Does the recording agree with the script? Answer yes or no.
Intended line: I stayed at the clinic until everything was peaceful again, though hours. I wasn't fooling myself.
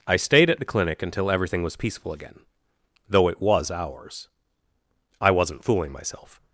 no